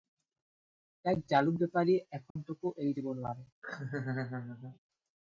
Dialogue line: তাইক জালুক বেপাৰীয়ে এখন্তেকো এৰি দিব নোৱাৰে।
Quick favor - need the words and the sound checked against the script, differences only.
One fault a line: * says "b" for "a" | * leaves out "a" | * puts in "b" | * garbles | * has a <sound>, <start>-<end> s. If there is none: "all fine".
* has a dropout, 2.3-2.4 s
* has a laugh, 3.6-4.8 s